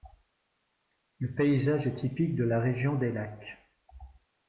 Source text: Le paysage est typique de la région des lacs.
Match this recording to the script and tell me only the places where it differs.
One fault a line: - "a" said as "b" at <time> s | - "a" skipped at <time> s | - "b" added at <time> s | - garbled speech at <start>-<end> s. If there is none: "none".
none